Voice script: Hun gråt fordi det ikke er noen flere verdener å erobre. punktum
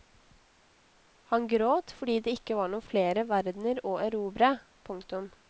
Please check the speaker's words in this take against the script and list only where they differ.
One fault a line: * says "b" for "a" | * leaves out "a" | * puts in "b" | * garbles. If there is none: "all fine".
* says "Han" for "Hun"
* says "var" for "er"